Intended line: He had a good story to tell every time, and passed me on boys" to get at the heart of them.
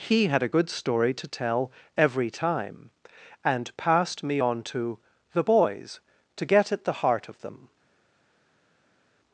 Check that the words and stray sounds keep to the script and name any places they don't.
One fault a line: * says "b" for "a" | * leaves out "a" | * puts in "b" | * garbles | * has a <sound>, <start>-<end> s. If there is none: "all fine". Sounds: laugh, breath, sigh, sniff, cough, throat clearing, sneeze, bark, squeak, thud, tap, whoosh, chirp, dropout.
* puts in "to the"